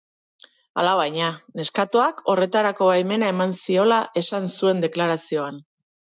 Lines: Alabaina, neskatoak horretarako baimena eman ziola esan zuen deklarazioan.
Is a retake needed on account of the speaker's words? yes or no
no